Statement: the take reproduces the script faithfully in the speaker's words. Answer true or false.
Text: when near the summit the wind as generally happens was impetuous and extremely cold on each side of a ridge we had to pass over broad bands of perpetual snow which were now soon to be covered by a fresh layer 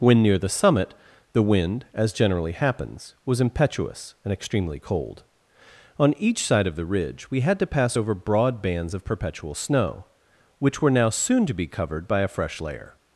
false